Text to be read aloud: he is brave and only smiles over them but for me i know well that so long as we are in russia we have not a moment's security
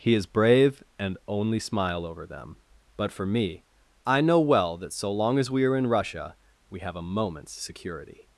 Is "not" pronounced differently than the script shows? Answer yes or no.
yes